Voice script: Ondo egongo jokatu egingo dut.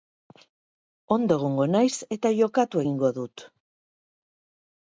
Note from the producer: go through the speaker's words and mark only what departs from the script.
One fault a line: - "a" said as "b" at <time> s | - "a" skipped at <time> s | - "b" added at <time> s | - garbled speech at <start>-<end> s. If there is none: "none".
- "naiz eta" added at 1.8 s